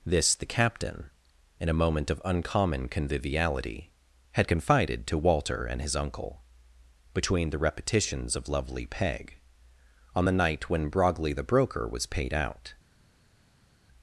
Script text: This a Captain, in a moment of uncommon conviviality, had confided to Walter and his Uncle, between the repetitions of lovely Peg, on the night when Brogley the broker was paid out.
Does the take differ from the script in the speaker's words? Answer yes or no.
yes